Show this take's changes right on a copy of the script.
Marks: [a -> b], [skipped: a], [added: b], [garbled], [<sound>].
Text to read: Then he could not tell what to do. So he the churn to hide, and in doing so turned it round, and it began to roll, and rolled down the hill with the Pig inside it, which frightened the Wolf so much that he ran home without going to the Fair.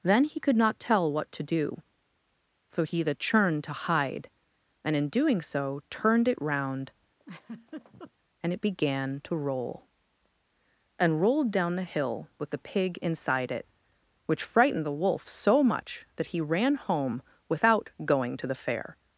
Then he could not tell what to do. So he the churn to hide, and in doing so turned it round, [laugh] and it began to roll, and rolled down the hill with the Pig inside it, which frightened the Wolf so much that he ran home without going to the Fair.